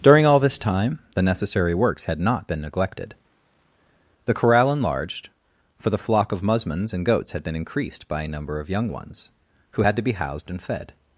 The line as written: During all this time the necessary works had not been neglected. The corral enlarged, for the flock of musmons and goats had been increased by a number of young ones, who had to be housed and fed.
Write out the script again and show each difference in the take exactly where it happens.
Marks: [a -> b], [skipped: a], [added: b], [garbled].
During all this time the necessary works had not been neglected. The corral enlarged, for the flock of musmons and goats had been increased by a number of young ones, who had to be housed and fed.